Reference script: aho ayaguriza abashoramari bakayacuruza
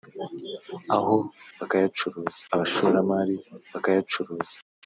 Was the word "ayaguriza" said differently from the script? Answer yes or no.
yes